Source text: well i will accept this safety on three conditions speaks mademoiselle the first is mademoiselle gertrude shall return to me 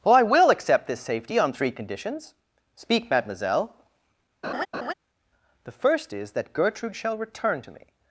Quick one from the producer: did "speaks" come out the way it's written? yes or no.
no